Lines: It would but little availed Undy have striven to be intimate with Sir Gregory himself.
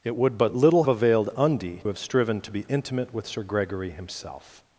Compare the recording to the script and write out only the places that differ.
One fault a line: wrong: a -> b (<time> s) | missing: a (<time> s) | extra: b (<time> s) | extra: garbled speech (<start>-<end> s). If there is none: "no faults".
no faults